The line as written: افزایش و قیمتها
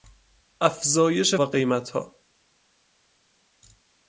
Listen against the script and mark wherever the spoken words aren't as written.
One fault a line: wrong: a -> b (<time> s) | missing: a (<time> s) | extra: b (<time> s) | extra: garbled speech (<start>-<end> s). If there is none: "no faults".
no faults